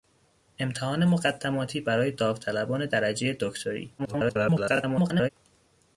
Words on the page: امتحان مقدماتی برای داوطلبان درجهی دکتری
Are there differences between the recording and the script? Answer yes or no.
yes